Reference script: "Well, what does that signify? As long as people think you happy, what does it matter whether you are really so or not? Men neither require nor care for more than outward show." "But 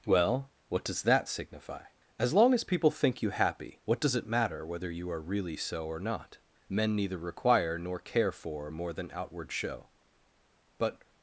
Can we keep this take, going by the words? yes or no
yes